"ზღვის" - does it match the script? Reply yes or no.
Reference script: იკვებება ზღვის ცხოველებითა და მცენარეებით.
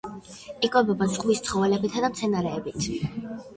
yes